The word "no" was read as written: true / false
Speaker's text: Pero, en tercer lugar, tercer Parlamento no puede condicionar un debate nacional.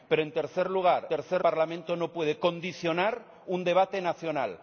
true